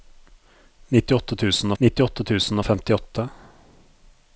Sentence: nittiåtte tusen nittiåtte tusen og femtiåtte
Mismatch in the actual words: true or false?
false